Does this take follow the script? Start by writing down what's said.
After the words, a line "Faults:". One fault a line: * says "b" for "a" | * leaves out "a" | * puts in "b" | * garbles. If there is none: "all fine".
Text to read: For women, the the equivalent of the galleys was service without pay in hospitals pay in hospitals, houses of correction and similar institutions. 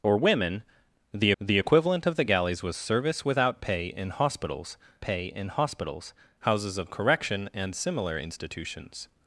For women, the the equivalent of the galleys was service without pay in hospitals pay in hospitals, houses of correction and similar institutions.
Faults:
all fine